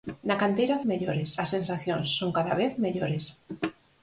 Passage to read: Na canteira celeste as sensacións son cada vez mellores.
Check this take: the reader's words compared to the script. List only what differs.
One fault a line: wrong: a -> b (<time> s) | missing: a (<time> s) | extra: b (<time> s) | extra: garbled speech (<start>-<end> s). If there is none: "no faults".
wrong: celeste -> mellores (0.9 s)